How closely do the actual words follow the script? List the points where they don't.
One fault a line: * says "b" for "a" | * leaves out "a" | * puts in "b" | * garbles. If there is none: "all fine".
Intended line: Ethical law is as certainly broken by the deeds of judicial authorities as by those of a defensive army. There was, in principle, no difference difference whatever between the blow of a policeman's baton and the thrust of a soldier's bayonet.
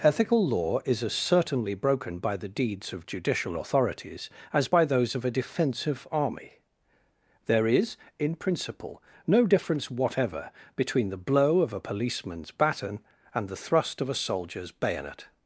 * says "is" for "was"
* leaves out "difference"